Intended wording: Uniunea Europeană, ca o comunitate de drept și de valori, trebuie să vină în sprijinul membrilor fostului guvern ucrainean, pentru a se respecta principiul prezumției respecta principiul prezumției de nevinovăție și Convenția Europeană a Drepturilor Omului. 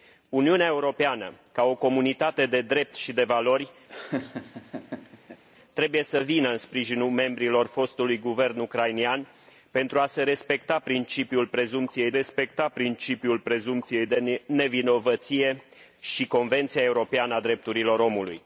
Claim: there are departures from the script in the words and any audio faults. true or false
true